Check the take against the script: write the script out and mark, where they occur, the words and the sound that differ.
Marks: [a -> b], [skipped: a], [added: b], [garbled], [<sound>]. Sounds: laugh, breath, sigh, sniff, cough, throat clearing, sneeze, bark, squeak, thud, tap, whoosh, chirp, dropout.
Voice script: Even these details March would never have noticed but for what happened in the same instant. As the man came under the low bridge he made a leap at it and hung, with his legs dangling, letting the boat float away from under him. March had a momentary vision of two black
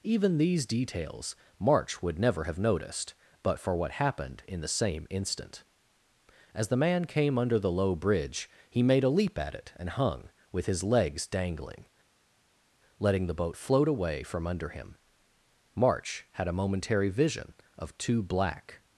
Even these details March would never have noticed but for what happened in the same instant. As the man came under the low bridge he made a leap at it and hung, with his legs dangling, letting the boat float away from under him. March had a momentary vision of two black